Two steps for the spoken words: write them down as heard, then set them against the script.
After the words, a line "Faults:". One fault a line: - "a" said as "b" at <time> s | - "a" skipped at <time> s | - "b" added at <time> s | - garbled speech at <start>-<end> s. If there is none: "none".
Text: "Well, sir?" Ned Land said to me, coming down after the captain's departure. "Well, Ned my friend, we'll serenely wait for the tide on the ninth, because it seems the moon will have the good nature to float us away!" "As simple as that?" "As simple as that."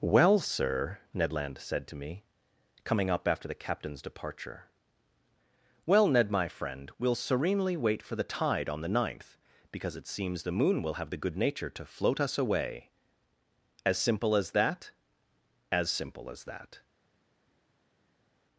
"Well, sir?" Ned Land said to me, coming up after the captain's departure. "Well, Ned my friend, we'll serenely wait for the tide on the ninth, because it seems the moon will have the good nature to float us away!" "As simple as that?" "As simple as that."
Faults:
- "down" said as "up" at 3.1 s